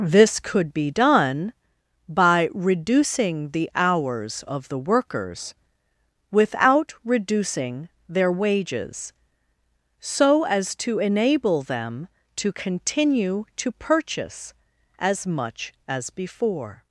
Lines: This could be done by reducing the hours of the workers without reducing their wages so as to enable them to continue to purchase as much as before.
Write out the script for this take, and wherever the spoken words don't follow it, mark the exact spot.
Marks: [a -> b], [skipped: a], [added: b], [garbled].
This could be done by reducing the hours of the workers without reducing their wages so as to enable them to continue to purchase as much as before.